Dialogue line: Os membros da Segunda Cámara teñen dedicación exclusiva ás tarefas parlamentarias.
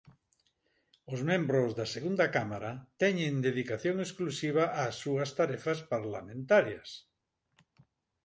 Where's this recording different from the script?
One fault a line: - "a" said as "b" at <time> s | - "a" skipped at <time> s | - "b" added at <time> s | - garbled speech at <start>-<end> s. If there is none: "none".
- "súas" added at 5.0 s